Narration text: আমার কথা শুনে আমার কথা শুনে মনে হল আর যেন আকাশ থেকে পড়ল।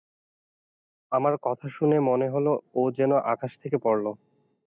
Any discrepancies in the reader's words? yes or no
yes